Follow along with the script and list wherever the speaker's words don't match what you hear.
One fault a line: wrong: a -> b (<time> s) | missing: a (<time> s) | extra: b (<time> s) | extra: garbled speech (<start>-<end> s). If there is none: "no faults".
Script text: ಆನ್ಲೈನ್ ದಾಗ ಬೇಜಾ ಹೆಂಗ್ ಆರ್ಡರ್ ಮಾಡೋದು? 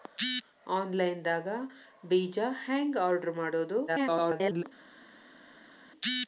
extra: garbled speech (3.9-4.6 s)